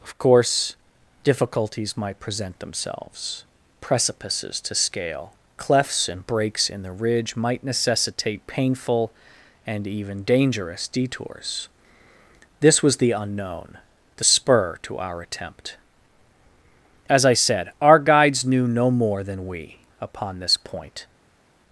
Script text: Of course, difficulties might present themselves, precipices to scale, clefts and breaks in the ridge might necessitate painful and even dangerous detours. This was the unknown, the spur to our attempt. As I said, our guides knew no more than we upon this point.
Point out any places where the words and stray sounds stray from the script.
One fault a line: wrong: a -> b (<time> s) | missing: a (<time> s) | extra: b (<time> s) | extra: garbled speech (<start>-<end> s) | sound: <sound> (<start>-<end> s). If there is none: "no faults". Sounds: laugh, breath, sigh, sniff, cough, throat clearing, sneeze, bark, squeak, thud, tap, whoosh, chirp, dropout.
no faults